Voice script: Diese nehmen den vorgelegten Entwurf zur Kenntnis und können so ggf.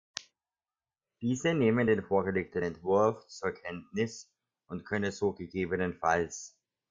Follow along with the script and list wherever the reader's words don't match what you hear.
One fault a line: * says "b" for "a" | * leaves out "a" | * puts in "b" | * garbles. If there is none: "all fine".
all fine